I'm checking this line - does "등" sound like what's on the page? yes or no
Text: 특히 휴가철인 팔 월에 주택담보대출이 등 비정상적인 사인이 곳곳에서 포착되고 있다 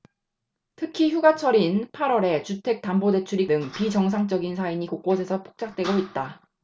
yes